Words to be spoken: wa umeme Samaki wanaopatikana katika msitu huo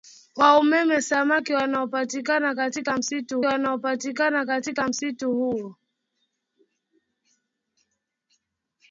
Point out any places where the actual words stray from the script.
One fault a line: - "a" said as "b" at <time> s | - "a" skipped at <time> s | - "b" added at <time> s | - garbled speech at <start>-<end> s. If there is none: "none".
- "wanaopatikana katika msitu" added at 3.4 s